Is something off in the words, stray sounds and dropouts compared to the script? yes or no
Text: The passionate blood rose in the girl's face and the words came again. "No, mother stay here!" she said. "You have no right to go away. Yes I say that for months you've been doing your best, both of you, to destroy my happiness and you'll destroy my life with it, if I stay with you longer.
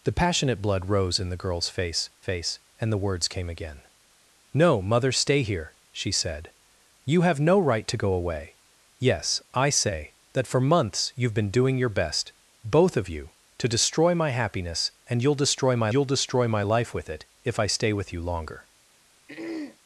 yes